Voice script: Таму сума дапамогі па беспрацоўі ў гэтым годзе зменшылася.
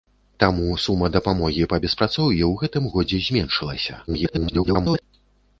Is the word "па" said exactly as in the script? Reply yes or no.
yes